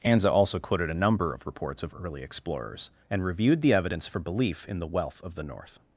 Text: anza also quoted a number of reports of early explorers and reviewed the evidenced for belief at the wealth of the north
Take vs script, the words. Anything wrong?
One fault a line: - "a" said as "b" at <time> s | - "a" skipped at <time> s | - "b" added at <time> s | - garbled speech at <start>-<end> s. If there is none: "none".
- "evidenced" said as "evidence" at 3.7 s
- "at" said as "in" at 4.7 s